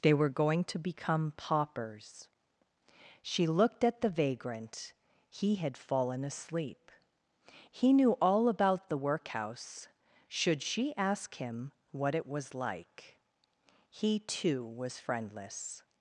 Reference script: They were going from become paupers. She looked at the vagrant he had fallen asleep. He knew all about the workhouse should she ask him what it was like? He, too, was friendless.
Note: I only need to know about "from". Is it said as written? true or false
false